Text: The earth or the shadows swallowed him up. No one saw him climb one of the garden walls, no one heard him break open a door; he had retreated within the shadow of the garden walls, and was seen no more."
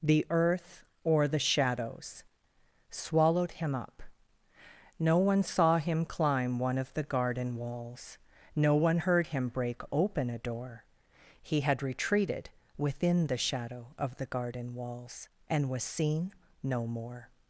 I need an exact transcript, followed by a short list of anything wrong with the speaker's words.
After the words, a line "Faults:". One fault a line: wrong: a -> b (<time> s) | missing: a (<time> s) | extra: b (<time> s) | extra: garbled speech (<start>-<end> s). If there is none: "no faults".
The earth or the shadows swallowed him up. No one saw him climb one of the garden walls, no one heard him break open a door; he had retreated within the shadow of the garden walls, and was seen no more."
Faults:
no faults